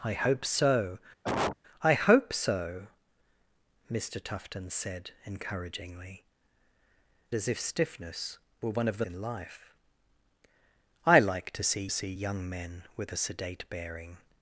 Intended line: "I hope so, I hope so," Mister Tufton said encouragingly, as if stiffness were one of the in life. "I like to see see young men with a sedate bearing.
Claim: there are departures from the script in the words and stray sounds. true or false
true